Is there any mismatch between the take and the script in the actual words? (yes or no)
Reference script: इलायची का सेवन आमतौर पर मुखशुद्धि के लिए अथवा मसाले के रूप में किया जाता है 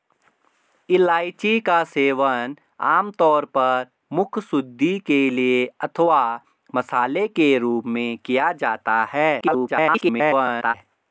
yes